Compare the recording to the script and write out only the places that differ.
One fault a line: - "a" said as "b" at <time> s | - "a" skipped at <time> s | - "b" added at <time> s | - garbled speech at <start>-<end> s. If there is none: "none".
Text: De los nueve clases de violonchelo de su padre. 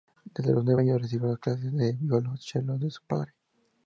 - "De" said as "Desde" at 0.3 s
- "años recibió" added at 0.8 s